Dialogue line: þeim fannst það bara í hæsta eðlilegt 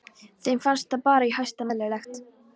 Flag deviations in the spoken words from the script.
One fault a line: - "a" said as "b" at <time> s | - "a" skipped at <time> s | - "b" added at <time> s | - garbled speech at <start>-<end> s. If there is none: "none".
none